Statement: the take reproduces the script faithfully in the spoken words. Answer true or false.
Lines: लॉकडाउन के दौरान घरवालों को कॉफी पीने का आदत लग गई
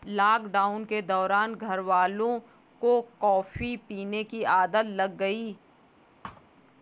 false